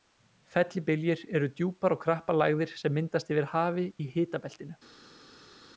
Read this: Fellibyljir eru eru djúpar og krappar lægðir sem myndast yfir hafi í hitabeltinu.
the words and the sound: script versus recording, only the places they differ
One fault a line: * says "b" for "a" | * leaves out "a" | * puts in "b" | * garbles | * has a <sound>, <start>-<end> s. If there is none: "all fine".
* leaves out "eru"